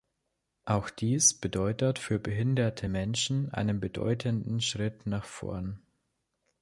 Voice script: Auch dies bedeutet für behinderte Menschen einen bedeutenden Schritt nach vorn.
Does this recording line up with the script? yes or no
yes